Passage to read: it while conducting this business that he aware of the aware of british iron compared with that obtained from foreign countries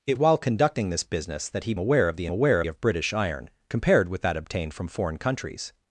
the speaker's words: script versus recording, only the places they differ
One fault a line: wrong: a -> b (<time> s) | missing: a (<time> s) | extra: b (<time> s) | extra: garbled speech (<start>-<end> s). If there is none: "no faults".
no faults